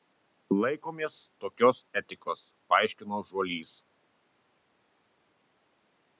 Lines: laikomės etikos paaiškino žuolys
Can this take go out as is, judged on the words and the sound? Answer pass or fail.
fail